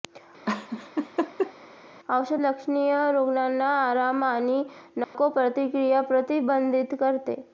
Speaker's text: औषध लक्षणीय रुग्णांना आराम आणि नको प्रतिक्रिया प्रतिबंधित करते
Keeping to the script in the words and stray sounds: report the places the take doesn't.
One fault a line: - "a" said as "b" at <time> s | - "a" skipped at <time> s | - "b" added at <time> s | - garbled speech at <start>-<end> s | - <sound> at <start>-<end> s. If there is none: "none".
- laugh at 0.5-1.5 s
- dropout at 5.0-5.1 s